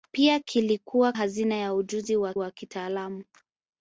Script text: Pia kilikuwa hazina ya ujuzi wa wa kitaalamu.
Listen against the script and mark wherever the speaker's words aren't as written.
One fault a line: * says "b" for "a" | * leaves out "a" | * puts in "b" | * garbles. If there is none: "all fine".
all fine